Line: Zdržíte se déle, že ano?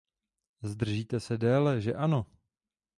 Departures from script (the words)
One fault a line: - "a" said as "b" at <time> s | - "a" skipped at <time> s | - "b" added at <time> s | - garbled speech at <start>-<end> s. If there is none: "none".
none